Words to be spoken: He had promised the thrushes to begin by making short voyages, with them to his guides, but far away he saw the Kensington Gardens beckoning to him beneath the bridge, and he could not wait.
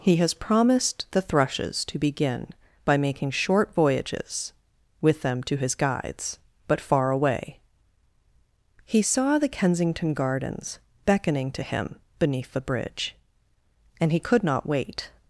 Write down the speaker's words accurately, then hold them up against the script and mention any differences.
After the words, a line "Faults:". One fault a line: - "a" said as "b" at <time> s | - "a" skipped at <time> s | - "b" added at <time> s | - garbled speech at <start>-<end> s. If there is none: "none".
He has promised the thrushes to begin by making short voyages, with them to his guides, but far away he saw the Kensington Gardens beckoning to him beneath the bridge, and he could not wait.
Faults:
- "had" said as "has" at 0.2 s